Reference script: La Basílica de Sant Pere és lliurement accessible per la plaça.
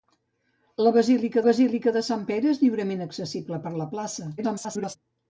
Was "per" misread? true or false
false